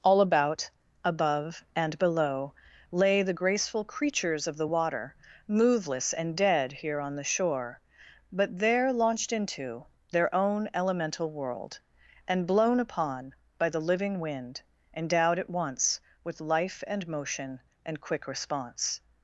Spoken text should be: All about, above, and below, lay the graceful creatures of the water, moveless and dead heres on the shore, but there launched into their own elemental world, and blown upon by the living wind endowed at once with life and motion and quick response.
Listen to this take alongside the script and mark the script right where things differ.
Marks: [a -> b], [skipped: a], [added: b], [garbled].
All about, above, and below, lay the graceful creatures of the water, moveless and dead [heres -> here] on the shore, but there launched into their own elemental world, and blown upon by the living wind endowed at once with life and motion and quick response.